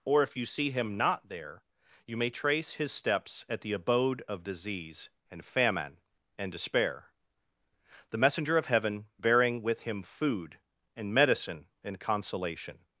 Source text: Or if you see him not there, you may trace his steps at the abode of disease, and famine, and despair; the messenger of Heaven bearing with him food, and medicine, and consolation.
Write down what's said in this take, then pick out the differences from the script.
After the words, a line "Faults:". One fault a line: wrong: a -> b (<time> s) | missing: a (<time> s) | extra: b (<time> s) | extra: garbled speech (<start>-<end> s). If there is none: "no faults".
Or if you see him not there, you may trace his steps at the abode of disease, and famine, and despair; the messenger of Heaven bearing with him food, and medicine, and consolation.
Faults:
no faults